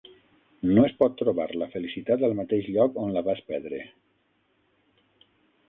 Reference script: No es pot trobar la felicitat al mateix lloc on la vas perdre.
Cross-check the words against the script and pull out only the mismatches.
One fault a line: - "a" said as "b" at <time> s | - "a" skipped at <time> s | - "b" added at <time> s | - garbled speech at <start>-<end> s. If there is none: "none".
none